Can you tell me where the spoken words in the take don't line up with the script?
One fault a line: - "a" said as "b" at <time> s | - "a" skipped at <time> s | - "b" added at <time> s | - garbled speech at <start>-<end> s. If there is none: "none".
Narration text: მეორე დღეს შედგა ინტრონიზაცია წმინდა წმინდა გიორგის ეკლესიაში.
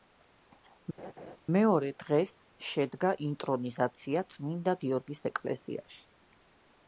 - "წმინდა" skipped at 4.8 s